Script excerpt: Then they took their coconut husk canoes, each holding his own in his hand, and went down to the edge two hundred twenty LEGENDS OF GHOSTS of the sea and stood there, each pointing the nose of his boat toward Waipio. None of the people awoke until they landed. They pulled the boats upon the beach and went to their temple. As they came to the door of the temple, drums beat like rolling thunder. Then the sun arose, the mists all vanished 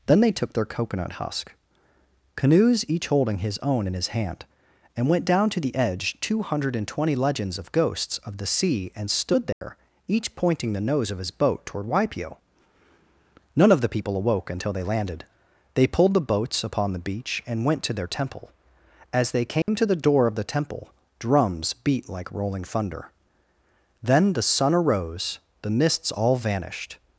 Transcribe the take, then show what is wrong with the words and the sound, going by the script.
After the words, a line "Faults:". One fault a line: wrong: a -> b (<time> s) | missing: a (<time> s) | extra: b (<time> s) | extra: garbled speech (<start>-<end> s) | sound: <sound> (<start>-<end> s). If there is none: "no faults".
Then they took their coconut husk canoes, each holding his own in his hand, and went down to the edge two hundred twenty LEGENDS OF GHOSTS of the sea and stood there, each pointing the nose of his boat toward Waipio. None of the people awoke until they landed. They pulled the boats upon the beach and went to their temple. As they came to the door of the temple, drums beat like rolling thunder. Then the sun arose, the mists all vanished
Faults:
sound: dropout (9.5-9.6 s)
sound: dropout (19.6-19.7 s)